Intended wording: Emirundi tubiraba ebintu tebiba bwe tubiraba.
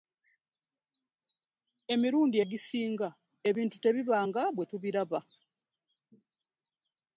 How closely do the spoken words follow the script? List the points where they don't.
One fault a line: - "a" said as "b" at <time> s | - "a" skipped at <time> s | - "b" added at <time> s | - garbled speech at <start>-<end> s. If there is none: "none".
- "tubiraba" said as "egisinga" at 2.4 s
- "nga" added at 4.3 s